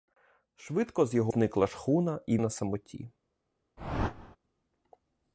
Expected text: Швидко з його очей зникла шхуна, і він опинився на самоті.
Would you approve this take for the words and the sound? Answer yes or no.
no